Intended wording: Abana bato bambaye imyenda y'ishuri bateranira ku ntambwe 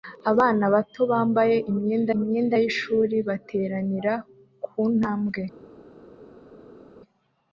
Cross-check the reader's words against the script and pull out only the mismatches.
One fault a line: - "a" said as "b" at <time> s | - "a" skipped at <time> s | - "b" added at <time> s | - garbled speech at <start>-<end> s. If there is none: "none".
- "imyenda" added at 2.2 s